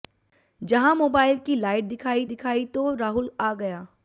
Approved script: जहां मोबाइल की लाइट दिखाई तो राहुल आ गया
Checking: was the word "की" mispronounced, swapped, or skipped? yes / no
no